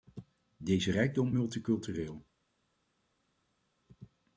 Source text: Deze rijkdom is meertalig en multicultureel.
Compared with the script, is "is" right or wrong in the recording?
wrong